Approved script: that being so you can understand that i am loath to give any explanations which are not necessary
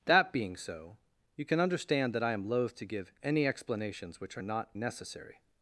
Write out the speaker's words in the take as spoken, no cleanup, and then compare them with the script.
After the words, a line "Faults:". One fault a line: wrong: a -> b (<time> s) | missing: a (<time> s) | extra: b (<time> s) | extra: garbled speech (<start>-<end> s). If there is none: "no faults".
that being so you can understand that i am loath to give any explanations which are not necessary
Faults:
no faults